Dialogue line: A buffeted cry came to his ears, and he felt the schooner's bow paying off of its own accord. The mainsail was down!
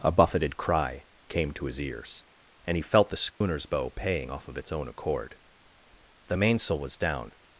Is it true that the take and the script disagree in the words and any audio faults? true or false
true